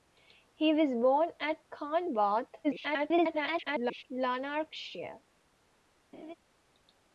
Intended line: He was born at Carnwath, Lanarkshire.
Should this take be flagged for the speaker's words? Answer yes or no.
yes